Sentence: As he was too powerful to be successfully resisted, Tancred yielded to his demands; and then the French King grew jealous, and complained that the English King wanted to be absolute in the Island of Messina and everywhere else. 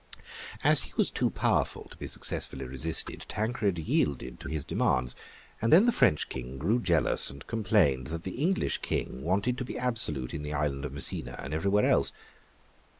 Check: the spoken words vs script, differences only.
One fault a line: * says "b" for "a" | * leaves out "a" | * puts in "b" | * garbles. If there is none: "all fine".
all fine